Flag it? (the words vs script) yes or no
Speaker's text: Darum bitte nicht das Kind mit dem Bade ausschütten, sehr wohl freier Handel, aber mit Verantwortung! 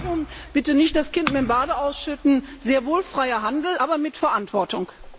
no